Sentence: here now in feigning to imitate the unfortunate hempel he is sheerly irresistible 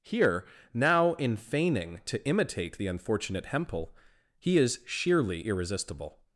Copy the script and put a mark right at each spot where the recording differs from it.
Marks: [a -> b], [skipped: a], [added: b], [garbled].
here now in feigning to imitate the unfortunate hempel he is sheerly irresistible